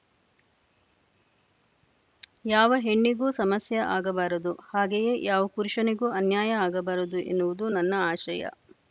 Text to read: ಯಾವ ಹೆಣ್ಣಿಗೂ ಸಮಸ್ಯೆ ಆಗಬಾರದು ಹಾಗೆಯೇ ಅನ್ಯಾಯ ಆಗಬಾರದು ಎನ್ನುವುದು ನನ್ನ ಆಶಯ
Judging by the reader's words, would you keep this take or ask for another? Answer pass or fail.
fail